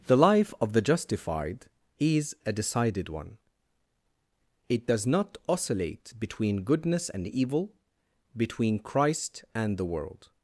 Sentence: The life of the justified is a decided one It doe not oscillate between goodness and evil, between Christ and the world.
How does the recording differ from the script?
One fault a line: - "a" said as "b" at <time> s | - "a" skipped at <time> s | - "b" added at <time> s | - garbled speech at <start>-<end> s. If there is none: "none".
- "doe" said as "does" at 4.9 s